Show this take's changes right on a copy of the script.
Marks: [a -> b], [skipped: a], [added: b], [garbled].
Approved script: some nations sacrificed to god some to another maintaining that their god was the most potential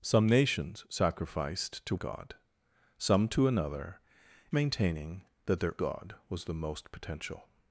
some nations sacrificed to god some to another maintaining that their god was the most potential